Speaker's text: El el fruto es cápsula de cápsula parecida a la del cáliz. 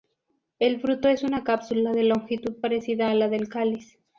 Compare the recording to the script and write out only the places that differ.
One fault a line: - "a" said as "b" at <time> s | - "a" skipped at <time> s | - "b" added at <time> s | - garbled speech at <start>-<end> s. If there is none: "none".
- "el" skipped at 0.8 s
- "una" added at 1.2 s
- "cápsula" said as "longitud" at 2.0 s